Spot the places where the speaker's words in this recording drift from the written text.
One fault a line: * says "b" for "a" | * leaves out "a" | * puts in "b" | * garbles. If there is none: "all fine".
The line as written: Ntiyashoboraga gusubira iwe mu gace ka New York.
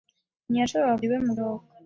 * leaves out "gusubira"
* leaves out "gace ka New"